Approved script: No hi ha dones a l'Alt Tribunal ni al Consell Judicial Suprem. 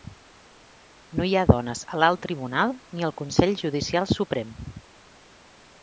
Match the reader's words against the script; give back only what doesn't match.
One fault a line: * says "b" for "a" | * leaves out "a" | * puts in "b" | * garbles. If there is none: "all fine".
all fine